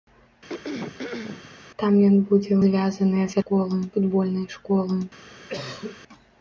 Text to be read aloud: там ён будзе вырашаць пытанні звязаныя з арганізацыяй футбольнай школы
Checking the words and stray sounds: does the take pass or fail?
fail